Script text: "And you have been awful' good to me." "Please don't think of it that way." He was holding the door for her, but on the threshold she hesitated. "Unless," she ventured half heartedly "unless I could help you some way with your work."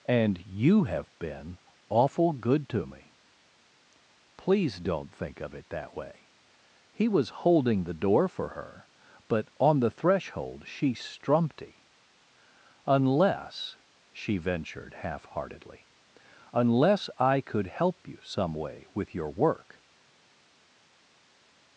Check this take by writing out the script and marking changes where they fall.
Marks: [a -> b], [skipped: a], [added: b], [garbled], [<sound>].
"And you have been awful' good to me." "Please don't think of it that way." He was holding the door for her, but on the threshold she [hesitated. -> strumpty] "Unless," she ventured half heartedly "unless I could help you some way with your work."